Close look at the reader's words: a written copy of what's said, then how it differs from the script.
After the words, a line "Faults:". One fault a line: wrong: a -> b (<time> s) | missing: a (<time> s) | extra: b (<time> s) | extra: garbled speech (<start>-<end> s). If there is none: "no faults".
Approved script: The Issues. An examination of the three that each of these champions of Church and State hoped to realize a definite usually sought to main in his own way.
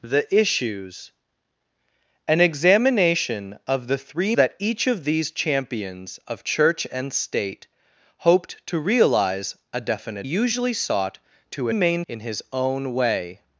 The Issues. An examination of the three that each of these champions of Church and State hoped to realize a definite usually sought to main in his own way.
Faults:
no faults